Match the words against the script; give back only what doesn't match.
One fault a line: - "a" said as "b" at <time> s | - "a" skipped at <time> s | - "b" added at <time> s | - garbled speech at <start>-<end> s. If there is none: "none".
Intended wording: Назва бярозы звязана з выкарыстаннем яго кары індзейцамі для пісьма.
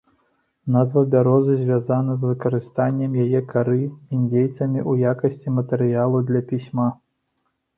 - "яго" said as "яе" at 3.2 s
- "ў якасці матэрыялу" added at 4.9 s